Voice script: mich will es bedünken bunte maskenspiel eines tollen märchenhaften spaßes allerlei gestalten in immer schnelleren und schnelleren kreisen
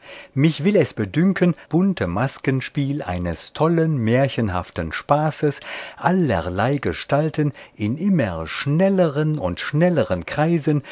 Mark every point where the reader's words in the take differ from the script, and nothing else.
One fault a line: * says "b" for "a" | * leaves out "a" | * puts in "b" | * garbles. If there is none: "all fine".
all fine